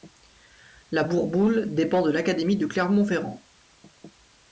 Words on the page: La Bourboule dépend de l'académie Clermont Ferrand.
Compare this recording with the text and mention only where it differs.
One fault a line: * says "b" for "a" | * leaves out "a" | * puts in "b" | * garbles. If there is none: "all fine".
* puts in "de"